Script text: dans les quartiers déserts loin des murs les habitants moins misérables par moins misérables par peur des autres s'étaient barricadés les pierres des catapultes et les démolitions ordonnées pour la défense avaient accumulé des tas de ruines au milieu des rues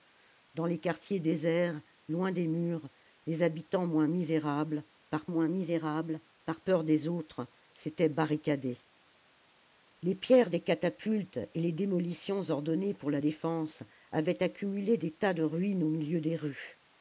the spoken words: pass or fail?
pass